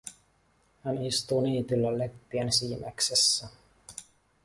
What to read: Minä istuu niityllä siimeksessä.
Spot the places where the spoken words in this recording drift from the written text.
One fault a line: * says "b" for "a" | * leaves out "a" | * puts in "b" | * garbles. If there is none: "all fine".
* says "Hän" for "Minä"
* puts in "leppien"